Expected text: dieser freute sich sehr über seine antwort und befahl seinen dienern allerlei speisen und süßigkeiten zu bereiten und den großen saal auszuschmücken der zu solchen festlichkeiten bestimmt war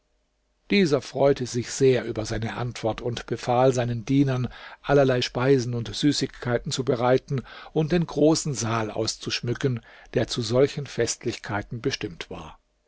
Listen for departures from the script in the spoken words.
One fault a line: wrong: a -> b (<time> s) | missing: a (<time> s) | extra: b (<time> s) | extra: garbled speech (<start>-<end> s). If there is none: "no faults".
no faults